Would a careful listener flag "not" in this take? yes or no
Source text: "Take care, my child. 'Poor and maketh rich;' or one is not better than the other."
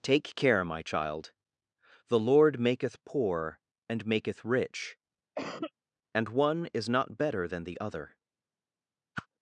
no